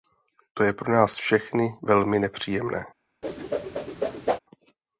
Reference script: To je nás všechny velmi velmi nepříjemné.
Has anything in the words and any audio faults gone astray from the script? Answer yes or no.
yes